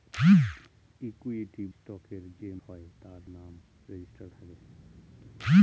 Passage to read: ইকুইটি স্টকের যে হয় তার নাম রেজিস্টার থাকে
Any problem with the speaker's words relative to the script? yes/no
no